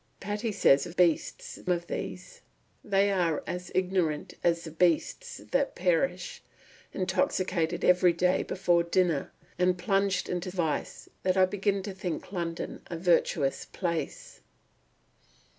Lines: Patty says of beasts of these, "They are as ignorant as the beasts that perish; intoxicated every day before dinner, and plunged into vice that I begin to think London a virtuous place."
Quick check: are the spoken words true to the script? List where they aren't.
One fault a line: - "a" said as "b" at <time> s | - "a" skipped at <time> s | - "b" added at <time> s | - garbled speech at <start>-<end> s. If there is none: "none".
none